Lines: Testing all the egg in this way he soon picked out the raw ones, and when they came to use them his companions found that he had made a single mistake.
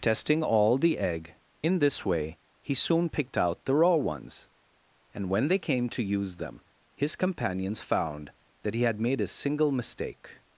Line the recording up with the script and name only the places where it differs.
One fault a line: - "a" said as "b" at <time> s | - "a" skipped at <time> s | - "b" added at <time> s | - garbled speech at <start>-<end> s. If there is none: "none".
none